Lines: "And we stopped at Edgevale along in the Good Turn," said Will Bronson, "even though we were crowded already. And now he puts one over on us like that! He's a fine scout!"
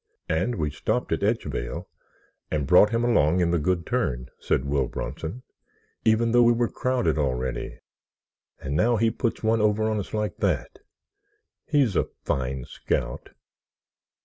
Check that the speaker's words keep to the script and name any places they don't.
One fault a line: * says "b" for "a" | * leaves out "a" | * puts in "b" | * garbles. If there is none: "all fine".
* puts in "and brought him"